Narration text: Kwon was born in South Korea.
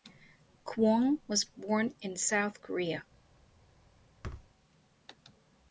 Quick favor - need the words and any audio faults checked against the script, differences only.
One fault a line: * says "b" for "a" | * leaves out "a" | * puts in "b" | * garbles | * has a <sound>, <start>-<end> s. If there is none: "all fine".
* has a thud, 4.2-4.5 s